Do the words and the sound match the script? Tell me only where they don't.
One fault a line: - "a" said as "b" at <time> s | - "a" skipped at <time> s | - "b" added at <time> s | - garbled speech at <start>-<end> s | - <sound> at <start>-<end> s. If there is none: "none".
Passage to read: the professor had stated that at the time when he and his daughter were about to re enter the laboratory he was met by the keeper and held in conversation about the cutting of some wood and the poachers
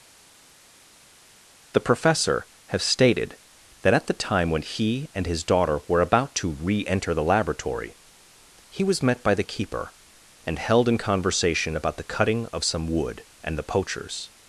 - "had" said as "have" at 2.7 s